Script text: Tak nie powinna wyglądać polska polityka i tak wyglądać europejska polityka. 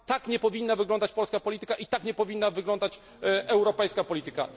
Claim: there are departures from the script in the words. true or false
true